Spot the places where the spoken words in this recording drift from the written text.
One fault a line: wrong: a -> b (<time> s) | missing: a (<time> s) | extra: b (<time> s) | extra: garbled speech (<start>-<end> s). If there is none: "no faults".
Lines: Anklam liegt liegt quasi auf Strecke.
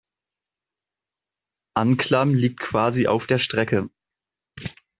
missing: liegt (2.6 s)
extra: der (3.3 s)